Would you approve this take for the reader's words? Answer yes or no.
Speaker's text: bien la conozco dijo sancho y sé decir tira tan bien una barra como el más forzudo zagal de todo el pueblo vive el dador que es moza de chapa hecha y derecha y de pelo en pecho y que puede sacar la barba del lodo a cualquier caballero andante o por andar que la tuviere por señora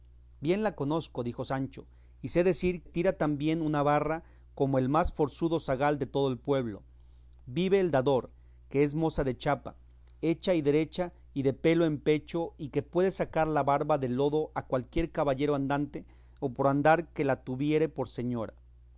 yes